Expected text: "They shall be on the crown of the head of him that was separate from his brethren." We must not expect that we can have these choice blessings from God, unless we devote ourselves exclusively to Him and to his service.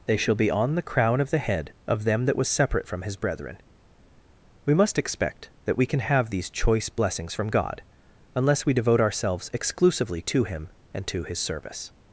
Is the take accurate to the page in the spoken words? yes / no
no